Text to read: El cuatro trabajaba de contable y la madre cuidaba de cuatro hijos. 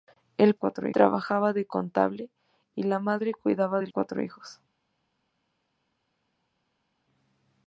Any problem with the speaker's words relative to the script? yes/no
no